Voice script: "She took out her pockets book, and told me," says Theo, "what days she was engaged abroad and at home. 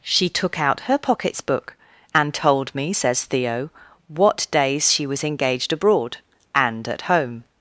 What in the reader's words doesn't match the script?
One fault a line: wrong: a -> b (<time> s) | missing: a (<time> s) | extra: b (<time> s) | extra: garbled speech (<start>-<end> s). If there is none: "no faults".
no faults